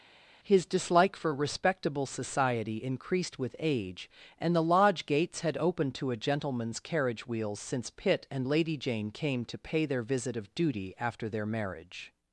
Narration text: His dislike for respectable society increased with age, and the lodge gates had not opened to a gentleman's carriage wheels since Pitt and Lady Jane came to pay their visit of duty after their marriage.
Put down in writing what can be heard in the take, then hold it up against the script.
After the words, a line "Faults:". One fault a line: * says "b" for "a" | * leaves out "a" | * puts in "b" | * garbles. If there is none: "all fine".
His dislike for respectable society increased with age, and the lodge gates had opened to a gentleman's carriage wheels since Pitt and Lady Jane came to pay their visit of duty after their marriage.
Faults:
* leaves out "not"